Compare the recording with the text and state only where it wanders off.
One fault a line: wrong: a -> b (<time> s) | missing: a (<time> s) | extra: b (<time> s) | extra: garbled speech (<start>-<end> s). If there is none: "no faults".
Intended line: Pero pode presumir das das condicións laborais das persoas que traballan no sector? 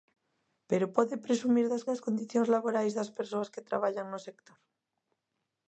no faults